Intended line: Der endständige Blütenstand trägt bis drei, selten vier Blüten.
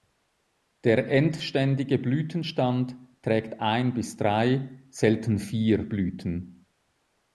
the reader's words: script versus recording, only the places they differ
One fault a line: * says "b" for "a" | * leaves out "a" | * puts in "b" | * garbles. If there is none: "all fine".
* puts in "ein"